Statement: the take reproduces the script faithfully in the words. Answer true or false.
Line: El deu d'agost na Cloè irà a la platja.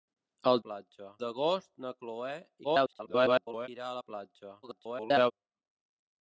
false